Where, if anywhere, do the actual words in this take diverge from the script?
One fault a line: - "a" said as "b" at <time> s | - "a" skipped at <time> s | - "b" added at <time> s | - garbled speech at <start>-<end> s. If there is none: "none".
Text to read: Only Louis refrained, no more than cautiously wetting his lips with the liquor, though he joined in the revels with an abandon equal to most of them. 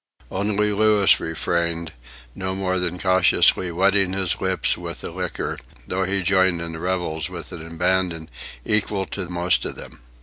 none